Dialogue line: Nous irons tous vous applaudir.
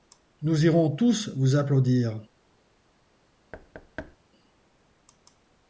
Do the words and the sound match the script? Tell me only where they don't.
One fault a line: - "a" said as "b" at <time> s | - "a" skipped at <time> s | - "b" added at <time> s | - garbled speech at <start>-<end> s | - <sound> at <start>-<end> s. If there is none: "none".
- thud at 3.5-4.2 s